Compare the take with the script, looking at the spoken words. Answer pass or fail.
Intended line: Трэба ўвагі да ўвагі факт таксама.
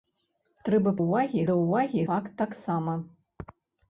pass